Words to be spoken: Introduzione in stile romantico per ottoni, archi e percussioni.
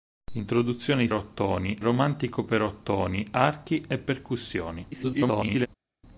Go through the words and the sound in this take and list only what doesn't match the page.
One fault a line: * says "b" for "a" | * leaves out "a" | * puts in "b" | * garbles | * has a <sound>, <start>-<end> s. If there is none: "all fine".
* says "ottoni" for "stile"
* garbles